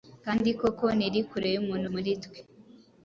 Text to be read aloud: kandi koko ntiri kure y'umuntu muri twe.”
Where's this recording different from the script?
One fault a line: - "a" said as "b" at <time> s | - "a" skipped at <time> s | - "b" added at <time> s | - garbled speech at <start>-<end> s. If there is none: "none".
none